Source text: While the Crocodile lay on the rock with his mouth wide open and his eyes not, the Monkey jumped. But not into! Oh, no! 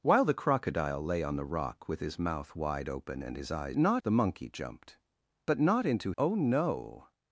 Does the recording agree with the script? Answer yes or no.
yes